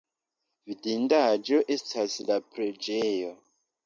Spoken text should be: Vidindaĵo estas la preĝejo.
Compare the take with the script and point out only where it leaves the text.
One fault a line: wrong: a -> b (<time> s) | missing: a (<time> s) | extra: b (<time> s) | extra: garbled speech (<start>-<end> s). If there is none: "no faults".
no faults